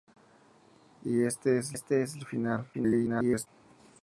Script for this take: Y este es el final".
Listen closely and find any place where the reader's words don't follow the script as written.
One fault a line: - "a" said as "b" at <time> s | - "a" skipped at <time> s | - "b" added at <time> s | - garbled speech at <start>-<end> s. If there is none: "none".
- "este es" added at 1.7 s
- garbled speech at 2.7-3.5 s